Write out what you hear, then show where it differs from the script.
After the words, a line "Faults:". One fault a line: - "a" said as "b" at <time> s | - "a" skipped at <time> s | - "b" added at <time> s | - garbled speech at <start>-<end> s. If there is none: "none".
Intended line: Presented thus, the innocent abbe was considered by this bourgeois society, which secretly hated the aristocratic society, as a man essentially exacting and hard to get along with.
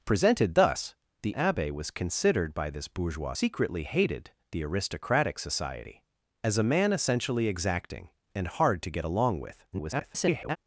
Presented thus, the abbe was considered by this bourgeois secretly hated the aristocratic society, as a man essentially exacting and hard to get along with. [garbled]
Faults:
- "innocent" skipped at 1.3 s
- "society which" skipped at 3.4 s
- garbled speech at 9.7-10.6 s